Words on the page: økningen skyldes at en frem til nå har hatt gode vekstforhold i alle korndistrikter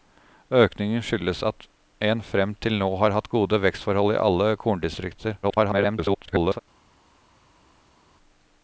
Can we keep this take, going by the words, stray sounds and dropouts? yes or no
no